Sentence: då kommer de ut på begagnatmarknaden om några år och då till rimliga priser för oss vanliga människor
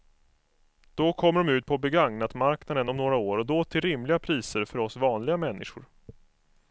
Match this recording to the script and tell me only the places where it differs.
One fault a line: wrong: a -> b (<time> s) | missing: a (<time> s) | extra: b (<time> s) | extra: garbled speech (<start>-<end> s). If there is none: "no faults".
no faults